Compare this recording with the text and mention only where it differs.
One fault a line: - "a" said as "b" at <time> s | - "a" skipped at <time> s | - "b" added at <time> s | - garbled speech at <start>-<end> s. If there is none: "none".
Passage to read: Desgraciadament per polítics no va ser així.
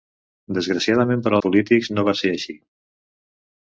none